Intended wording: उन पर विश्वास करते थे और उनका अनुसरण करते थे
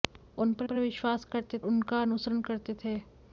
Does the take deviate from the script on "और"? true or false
true